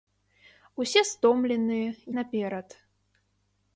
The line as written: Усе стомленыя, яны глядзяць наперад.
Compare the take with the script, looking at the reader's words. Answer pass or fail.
fail